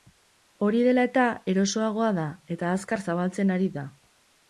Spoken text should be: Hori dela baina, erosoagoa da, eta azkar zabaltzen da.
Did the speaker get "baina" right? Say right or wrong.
wrong